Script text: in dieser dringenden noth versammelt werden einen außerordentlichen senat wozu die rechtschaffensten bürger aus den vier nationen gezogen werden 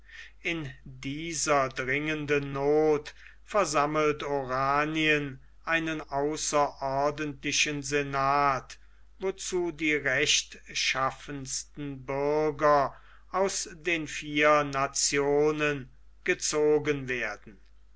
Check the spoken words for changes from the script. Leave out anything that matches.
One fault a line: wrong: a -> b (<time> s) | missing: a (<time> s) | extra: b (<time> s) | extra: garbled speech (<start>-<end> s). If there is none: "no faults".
wrong: werden -> oranien (4.2 s)